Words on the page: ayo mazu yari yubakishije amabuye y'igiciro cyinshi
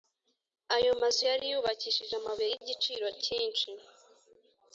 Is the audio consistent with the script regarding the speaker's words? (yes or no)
yes